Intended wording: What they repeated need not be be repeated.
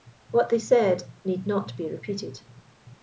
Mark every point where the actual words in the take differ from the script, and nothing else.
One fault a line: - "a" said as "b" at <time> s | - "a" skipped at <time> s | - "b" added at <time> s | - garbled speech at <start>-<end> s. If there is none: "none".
- "repeated" said as "said" at 0.6 s
- "be" skipped at 1.9 s